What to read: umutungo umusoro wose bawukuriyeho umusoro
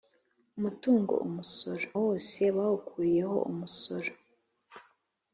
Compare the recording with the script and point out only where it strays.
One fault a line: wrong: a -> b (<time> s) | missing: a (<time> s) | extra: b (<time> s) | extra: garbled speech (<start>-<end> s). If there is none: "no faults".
no faults